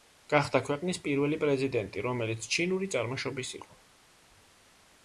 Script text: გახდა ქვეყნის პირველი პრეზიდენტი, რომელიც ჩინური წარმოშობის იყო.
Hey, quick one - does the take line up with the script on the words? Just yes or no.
yes